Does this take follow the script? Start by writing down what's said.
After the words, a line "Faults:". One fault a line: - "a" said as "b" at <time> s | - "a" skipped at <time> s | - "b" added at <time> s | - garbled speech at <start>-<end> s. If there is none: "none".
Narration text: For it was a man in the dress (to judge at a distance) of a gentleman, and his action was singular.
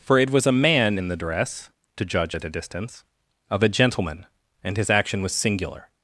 For it was a man in the dress (to judge at a distance) of a gentleman, and his action was singular.
Faults:
none